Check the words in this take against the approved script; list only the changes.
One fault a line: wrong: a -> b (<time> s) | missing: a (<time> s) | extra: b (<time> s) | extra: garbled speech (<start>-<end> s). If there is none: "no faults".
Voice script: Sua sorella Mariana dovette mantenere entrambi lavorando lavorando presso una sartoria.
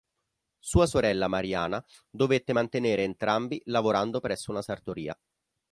missing: lavorando (4.2 s)